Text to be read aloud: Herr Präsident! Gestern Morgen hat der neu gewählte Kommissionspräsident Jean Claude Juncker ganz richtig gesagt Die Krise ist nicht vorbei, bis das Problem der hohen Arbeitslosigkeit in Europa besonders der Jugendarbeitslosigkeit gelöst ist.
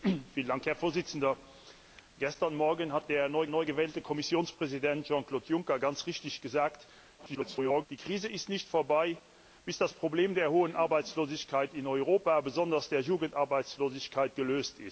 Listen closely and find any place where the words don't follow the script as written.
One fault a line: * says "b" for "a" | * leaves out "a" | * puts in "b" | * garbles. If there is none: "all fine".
* puts in "neu"
* garbles